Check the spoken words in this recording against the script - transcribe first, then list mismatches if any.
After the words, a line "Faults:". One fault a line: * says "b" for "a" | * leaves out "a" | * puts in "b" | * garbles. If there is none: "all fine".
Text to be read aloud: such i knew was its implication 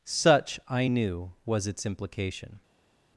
such i knew was its implication
Faults:
all fine